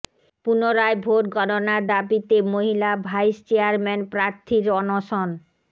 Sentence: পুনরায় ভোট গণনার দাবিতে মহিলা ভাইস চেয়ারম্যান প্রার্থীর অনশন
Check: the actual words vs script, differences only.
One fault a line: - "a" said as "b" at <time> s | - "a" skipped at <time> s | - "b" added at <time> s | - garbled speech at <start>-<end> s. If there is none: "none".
none